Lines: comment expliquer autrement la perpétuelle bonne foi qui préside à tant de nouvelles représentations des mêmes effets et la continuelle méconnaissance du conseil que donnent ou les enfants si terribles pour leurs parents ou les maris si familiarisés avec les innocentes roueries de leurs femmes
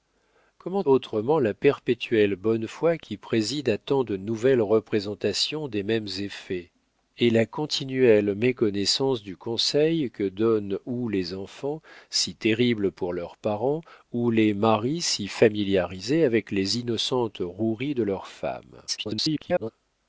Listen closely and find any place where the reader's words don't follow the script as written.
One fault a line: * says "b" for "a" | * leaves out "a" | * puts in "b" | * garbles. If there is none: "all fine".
* leaves out "expliquer"
* garbles